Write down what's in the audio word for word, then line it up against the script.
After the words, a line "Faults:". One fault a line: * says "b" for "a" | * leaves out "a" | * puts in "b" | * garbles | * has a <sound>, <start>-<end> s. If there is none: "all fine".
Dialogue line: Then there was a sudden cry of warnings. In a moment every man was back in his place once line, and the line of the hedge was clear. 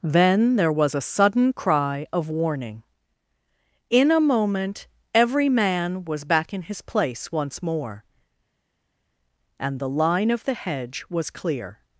Then there was a sudden cry of warning. In a moment every man was back in his place once more, and the line of the hedge was clear.
Faults:
* says "warning" for "warnings"
* says "more" for "line"